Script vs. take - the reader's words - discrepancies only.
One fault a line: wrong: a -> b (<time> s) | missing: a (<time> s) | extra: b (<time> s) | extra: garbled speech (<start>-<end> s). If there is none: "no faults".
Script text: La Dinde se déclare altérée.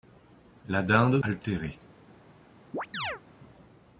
missing: se déclare (1.2 s)